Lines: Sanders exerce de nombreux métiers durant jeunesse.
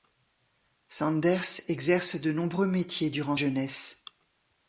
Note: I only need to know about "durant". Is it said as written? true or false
true